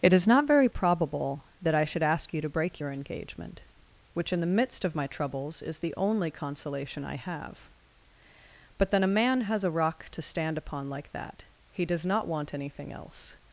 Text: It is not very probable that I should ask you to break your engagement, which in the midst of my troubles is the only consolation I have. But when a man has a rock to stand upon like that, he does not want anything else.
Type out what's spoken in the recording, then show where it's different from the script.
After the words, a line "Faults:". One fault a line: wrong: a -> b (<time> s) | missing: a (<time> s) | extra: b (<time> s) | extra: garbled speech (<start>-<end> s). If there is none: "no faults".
It is not very probable that I should ask you to break your engagement, which in the midst of my troubles is the only consolation I have. But then a man has a rock to stand upon like that, he does not want anything else.
Faults:
wrong: when -> then (8.9 s)